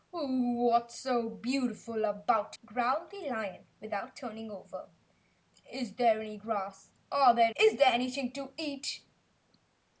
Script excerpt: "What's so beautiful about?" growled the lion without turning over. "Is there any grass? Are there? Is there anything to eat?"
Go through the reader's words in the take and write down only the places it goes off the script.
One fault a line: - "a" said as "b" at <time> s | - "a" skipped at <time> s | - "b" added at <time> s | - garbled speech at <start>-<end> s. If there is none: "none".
none